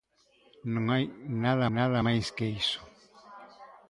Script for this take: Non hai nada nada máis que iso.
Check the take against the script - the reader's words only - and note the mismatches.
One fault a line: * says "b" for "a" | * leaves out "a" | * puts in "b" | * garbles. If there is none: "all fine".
all fine